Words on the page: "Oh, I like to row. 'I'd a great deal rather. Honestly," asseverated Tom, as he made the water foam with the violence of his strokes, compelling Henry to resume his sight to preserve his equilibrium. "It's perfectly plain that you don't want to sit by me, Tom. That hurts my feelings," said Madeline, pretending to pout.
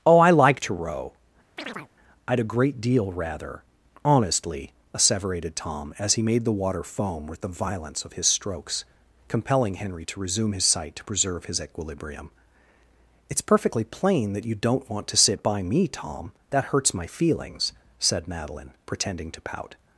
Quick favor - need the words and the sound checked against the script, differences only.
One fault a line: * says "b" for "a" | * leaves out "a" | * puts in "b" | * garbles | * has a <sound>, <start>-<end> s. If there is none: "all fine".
* has a chirp, 1.6-1.9 s